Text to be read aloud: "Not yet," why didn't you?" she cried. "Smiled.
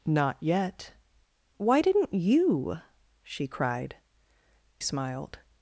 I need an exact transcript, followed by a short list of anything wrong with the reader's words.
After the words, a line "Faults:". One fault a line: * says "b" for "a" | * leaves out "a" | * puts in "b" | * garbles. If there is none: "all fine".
"Not yet," why didn't you?" she cried. "Smiled.
Faults:
all fine